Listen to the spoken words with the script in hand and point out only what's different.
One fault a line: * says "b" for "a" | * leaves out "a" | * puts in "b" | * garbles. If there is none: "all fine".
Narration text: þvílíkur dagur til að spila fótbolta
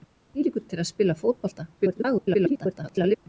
* leaves out "dagur"
* garbles